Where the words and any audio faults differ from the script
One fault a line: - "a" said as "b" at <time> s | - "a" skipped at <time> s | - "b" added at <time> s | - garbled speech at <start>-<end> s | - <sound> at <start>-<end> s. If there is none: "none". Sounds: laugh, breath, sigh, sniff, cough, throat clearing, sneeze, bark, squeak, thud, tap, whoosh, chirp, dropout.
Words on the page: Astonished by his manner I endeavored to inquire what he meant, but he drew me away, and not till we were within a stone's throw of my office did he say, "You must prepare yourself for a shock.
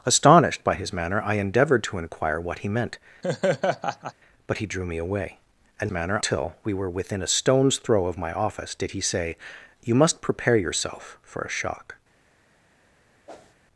- laugh at 3.2-4.1 s
- "not" said as "manner" at 5.9 s
- whoosh at 13.3-13.5 s